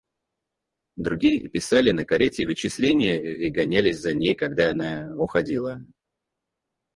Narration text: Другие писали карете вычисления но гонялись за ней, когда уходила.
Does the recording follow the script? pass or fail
fail